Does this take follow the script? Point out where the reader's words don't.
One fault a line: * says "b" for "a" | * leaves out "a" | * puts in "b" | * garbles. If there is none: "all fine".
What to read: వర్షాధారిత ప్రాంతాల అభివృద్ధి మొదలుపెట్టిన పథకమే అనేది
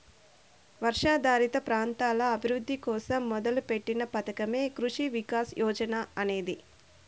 * puts in "కోసం"
* puts in "కృషి వికాస్ యోజన"